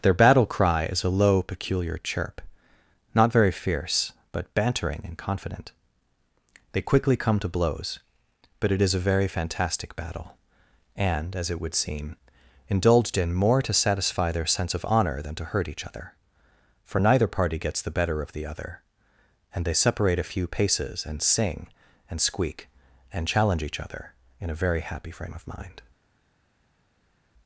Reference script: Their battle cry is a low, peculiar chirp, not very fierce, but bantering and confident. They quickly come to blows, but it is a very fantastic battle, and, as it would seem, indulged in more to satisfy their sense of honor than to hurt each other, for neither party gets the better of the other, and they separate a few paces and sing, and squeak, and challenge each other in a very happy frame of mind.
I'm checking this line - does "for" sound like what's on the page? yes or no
yes